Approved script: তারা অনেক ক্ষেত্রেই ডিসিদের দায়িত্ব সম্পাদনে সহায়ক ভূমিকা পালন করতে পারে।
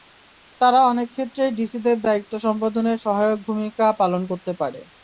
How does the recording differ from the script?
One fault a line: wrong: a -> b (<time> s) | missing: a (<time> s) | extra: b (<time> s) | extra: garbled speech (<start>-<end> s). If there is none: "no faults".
no faults